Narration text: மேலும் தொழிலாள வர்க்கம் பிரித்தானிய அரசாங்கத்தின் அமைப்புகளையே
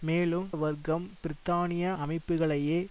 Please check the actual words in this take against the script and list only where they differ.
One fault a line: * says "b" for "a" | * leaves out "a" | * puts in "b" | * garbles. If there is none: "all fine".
* leaves out "தொழிலாள"
* leaves out "அரசாங்கத்தின்"